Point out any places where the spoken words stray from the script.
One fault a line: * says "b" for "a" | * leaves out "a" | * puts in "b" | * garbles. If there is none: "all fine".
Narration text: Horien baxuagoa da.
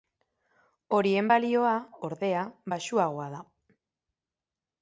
* puts in "balioa ordea"